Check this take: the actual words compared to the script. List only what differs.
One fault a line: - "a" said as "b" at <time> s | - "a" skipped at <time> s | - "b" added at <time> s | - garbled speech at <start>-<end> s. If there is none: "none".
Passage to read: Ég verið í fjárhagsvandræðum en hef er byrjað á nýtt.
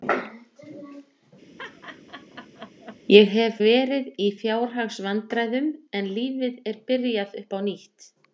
- "hef" added at 3.3 s
- "hef" said as "lífið" at 6.2 s
- "upp" added at 7.4 s